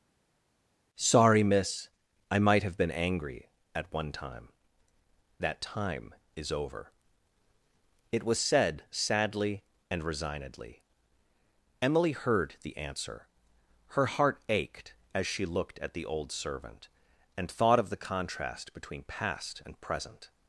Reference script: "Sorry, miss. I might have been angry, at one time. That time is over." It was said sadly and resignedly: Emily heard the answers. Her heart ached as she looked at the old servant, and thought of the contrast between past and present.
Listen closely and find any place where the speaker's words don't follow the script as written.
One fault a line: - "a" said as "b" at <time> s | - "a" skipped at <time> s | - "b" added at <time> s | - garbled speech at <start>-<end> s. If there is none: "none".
- "answers" said as "answer" at 12.8 s